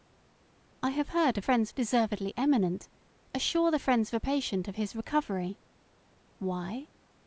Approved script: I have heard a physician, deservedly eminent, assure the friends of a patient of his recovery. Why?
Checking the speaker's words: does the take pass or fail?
fail